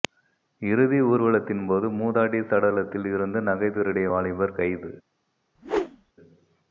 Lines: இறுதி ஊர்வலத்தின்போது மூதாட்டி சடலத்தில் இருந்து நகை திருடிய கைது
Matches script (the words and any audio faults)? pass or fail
fail